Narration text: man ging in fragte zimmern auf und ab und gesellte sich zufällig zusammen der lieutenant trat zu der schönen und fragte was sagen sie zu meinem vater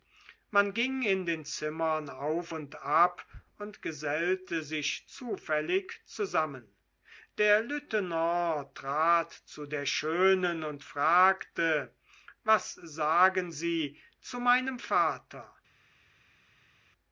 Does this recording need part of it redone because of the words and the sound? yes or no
yes